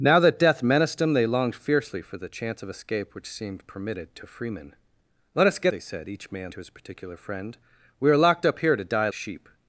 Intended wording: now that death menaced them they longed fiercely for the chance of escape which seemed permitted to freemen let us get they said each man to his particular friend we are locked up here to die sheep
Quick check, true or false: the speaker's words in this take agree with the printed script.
true